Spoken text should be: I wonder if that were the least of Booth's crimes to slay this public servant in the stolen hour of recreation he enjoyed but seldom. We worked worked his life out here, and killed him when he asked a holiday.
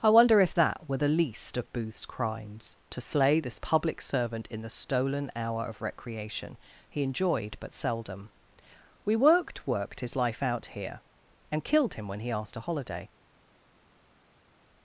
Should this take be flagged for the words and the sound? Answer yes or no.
no